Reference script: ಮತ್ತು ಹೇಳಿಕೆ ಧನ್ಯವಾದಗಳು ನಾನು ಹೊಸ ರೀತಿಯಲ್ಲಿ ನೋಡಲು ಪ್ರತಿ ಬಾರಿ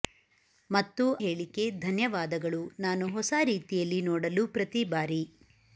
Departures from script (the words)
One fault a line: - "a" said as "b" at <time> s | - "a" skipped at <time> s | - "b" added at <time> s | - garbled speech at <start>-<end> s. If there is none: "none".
none